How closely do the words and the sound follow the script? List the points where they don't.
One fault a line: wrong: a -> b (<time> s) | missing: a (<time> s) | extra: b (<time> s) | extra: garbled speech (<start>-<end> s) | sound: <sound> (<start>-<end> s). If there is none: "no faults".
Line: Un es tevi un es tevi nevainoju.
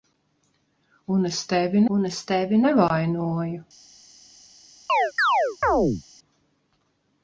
sound: chirp (4.9-6.0 s)